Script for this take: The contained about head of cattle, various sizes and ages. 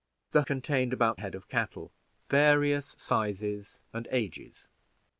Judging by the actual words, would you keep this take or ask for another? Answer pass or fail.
pass